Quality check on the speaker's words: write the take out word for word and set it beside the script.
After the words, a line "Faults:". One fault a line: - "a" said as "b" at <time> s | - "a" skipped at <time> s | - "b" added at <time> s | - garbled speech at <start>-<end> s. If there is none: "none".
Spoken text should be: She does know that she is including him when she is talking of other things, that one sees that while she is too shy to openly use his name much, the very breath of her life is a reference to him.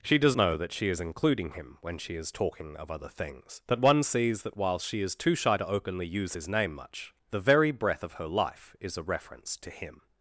She does know that she is including him when she is talking of other things, that one sees that while she is too shy to openly use his name much, the very breath of her life is a reference to him.
Faults:
none